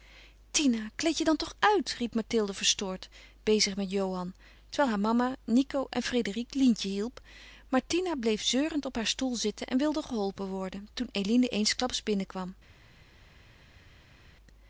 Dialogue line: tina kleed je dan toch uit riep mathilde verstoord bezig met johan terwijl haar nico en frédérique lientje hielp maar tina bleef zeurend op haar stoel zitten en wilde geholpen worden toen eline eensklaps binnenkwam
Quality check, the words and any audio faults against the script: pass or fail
fail